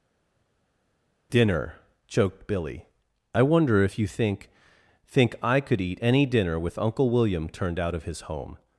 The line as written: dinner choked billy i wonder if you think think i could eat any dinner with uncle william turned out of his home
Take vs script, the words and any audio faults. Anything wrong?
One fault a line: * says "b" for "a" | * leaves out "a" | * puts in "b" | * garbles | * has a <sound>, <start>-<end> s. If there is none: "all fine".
all fine